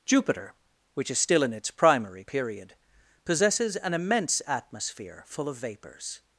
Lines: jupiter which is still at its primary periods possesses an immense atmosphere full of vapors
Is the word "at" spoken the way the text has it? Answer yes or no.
no